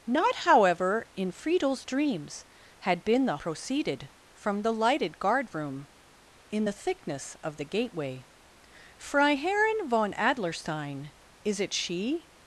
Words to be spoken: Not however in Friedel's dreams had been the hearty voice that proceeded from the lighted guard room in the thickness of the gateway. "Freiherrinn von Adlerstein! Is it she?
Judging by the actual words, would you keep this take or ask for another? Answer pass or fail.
fail